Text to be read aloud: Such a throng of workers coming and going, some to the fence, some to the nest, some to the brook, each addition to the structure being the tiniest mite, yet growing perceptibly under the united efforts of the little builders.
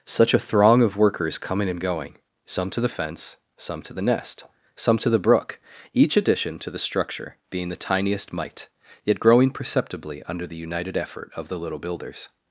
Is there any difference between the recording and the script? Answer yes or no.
yes